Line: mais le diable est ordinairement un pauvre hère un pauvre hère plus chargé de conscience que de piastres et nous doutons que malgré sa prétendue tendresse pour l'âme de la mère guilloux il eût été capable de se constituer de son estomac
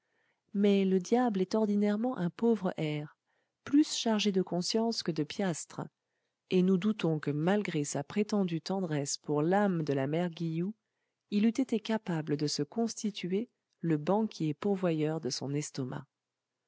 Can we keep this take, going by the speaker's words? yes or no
no